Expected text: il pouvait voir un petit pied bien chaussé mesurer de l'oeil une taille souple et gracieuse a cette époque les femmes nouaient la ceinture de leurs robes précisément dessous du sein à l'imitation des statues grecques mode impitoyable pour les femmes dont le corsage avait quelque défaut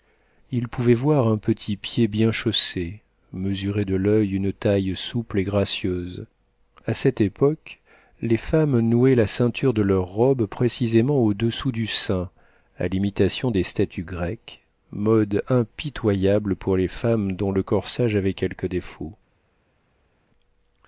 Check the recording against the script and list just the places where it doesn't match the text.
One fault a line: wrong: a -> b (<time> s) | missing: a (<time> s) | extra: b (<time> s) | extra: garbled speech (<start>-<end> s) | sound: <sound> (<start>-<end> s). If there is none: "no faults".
extra: au (11.2 s)